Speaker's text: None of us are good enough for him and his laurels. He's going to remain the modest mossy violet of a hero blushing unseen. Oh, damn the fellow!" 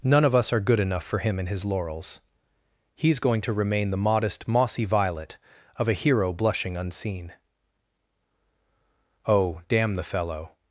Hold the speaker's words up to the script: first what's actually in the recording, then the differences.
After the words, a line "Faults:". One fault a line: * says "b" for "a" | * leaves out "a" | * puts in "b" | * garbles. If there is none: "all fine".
None of us are good enough for him and his laurels. He's going to remain the modest mossy violet of a hero blushing unseen. Oh, damn the fellow!"
Faults:
all fine